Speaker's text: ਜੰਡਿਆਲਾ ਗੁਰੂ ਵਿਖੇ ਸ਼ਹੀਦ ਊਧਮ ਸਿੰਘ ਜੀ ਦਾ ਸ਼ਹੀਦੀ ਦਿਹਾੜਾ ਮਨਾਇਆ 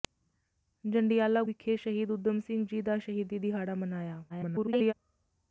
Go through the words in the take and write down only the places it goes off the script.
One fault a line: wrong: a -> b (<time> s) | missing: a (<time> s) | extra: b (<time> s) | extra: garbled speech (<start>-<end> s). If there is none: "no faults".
missing: ਗੁਰੂ (1.4 s)
extra: garbled speech (4.3-4.9 s)